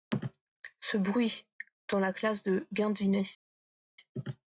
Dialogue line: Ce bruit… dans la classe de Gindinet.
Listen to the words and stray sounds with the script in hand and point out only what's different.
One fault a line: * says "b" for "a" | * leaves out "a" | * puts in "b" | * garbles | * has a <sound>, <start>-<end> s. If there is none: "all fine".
all fine